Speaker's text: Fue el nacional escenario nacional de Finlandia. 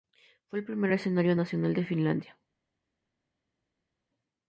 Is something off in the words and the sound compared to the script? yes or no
yes